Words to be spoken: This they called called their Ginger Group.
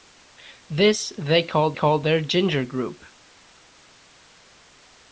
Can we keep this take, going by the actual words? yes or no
yes